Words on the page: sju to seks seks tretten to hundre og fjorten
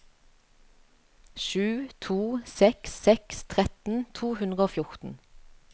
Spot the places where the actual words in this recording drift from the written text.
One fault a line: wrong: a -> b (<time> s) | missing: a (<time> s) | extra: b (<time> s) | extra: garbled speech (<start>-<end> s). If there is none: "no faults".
no faults